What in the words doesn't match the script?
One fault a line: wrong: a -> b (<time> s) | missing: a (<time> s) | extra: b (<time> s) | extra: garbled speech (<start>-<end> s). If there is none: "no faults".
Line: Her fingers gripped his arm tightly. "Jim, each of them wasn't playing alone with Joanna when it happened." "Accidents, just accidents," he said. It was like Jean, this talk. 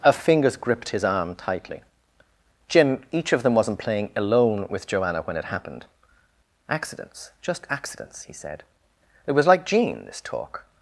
no faults